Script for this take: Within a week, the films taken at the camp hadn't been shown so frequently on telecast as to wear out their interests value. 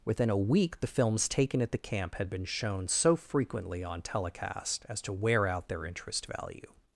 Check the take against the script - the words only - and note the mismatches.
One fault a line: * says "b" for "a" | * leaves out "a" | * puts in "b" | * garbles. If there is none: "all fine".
* says "had" for "hadn't"
* says "interest" for "interests"